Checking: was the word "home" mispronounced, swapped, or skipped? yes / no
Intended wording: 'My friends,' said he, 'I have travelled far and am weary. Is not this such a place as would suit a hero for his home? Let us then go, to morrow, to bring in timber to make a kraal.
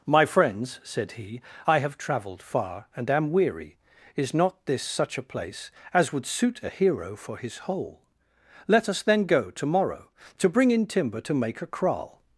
yes